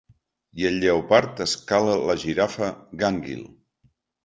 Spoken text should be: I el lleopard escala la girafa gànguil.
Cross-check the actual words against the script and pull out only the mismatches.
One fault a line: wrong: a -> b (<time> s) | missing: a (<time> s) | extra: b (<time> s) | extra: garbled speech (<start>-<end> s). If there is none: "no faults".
no faults